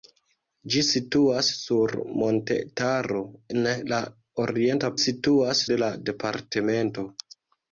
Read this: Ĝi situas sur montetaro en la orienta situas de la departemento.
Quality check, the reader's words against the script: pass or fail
pass